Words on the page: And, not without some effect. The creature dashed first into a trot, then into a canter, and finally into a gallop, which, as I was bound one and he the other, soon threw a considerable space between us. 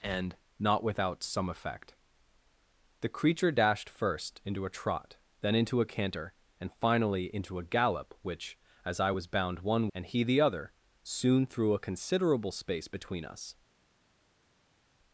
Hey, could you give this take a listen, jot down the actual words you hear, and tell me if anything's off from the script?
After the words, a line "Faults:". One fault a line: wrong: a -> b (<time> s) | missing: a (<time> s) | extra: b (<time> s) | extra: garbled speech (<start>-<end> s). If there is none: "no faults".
And, not without some effect. The creature dashed first into a trot, then into a canter, and finally into a gallop, which, as I was bound one and he the other, soon threw a considerable space between us.
Faults:
no faults